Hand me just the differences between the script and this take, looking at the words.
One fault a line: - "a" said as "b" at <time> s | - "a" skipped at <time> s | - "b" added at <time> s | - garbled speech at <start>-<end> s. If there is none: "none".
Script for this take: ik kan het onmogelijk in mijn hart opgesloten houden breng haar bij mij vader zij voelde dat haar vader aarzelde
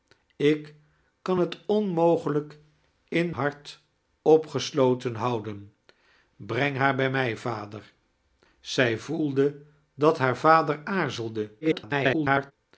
- "mijn" skipped at 3.3 s
- garbled speech at 11.6-12.5 s